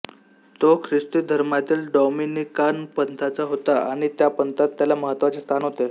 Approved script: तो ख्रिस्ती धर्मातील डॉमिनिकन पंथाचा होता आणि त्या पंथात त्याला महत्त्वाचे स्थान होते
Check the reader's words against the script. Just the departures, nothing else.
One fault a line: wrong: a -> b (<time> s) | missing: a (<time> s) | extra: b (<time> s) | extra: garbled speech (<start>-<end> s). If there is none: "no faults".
no faults